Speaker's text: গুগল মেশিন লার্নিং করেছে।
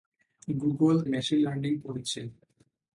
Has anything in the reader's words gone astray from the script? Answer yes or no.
no